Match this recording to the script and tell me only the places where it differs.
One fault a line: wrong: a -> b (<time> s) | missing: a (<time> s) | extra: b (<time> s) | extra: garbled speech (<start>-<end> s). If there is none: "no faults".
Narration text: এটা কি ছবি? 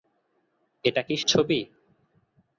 no faults